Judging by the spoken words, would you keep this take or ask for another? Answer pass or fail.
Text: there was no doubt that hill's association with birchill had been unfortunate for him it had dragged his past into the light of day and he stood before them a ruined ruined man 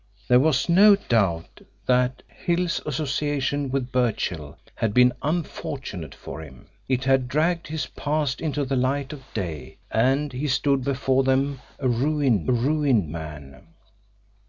pass